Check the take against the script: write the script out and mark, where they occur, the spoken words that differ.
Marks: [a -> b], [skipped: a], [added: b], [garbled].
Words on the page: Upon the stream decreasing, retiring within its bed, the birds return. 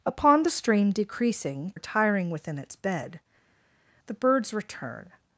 Upon the stream decreasing, retiring within its bed, the birds return.